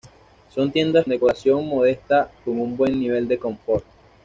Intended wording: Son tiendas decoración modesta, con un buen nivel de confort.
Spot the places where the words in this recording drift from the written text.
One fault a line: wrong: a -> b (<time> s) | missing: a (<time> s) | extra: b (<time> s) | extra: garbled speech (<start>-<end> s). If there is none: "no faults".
no faults